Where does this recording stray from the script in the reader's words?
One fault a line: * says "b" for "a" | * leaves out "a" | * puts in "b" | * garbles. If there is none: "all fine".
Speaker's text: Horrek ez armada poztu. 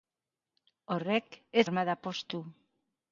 all fine